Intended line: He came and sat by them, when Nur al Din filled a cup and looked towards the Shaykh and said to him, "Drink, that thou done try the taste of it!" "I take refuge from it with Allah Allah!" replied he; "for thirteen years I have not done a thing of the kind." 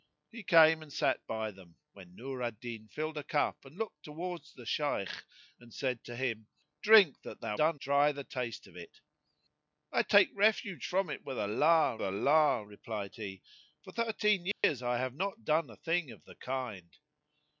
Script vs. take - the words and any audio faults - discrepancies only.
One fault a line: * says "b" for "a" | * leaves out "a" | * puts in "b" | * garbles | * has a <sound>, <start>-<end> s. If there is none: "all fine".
* has a dropout, 14.5-14.6 s